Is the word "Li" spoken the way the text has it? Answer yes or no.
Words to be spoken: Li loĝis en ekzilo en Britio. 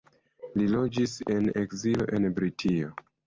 yes